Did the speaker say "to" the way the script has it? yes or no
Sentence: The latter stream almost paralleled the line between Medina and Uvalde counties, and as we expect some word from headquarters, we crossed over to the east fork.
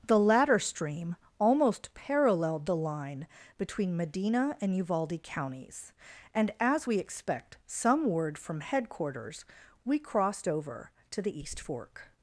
yes